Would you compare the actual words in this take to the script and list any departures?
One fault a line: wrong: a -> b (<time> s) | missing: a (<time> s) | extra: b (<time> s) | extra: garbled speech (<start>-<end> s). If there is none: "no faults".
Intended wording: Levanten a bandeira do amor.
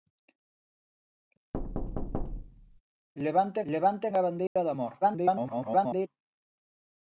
extra: levanten (3.7 s)
extra: garbled speech (5.0-6.1 s)